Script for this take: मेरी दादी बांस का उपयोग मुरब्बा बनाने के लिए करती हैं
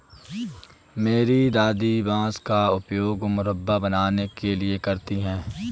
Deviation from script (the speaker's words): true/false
false